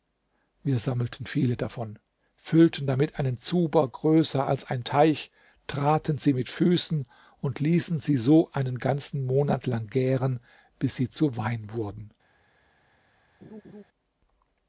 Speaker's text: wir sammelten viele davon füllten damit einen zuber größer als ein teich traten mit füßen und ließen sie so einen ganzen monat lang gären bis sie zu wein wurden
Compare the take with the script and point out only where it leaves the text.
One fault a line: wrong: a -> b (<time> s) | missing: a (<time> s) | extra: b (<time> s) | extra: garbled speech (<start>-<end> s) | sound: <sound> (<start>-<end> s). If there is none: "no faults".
extra: sie (6.2 s)
sound: laugh (13.4-13.8 s)